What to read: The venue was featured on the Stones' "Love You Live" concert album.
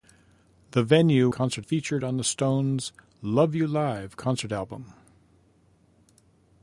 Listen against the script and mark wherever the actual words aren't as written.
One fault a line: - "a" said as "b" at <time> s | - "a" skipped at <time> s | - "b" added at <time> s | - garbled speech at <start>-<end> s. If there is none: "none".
- "was" said as "concert" at 1.3 s